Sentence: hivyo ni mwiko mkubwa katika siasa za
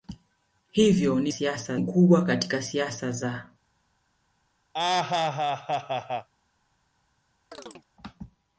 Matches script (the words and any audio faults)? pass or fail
fail